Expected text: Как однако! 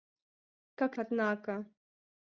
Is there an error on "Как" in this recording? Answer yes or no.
no